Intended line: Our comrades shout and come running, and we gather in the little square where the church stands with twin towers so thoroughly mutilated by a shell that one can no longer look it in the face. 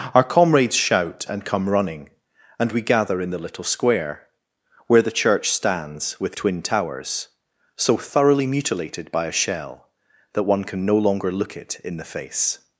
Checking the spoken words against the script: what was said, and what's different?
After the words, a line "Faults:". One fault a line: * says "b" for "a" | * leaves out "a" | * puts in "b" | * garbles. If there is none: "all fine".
Our comrades shout and come running, and we gather in the little square where the church stands with twin towers so thoroughly mutilated by a shell that one can no longer look it in the face.
Faults:
all fine